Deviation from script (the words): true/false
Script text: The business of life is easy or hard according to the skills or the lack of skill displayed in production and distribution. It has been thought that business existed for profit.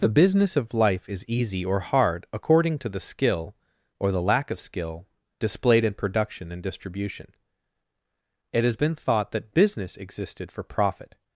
true